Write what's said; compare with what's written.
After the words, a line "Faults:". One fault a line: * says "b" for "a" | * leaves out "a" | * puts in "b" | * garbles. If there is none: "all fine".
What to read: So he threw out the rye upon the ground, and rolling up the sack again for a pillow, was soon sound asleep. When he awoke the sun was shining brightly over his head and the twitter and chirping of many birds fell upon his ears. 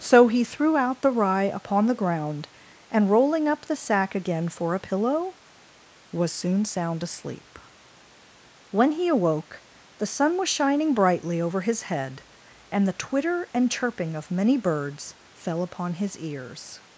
So he threw out the rye upon the ground, and rolling up the sack again for a pillow, was soon sound asleep. When he awoke the sun was shining brightly over his head and the twitter and chirping of many birds fell upon his ears.
Faults:
all fine